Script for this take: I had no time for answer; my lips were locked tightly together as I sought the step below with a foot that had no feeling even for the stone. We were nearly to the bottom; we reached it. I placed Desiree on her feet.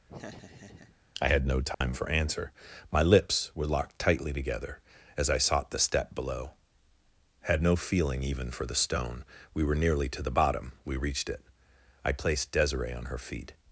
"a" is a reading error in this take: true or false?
true